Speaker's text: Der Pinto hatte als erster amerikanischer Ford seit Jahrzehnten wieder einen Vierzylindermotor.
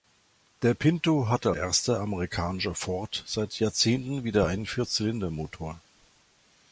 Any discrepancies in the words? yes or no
yes